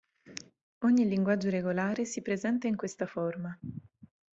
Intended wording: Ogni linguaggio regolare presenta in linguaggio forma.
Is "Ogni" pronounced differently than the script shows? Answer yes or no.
no